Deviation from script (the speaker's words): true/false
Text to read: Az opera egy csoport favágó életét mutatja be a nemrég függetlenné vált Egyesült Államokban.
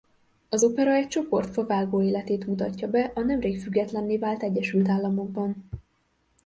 false